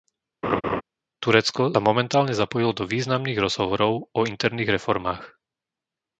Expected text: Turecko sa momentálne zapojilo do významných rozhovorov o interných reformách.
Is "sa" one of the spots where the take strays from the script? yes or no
yes